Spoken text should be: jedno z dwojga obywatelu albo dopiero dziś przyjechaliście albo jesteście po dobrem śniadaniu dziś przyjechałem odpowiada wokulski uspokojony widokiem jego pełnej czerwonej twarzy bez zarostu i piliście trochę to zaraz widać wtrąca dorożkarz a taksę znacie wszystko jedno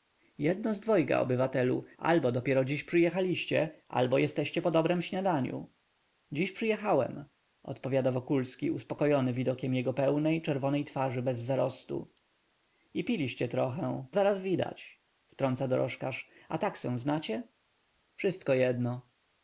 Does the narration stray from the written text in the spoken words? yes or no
yes